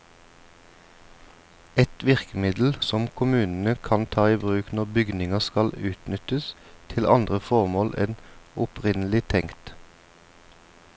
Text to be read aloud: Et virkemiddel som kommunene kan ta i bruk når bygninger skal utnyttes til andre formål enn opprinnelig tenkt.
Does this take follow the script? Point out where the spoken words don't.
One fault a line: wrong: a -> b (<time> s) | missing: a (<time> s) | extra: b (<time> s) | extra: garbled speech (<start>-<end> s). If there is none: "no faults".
no faults